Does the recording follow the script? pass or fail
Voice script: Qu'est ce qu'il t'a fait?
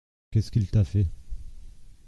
pass